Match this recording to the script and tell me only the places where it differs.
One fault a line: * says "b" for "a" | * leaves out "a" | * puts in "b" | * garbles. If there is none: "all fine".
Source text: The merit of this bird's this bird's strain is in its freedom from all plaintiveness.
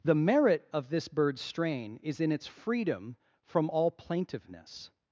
* leaves out "this bird's"